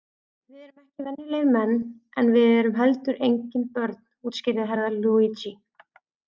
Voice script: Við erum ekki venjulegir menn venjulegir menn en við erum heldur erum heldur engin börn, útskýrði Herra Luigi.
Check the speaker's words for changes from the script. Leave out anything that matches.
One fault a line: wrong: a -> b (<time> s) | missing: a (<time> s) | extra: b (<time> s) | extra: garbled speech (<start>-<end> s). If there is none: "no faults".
missing: venjulegir menn (1.8 s)
missing: erum heldur (3.2 s)